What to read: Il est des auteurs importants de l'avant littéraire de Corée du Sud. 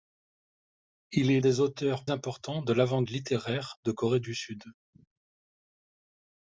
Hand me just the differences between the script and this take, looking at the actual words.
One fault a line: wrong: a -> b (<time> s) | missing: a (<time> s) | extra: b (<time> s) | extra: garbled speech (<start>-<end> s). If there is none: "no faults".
no faults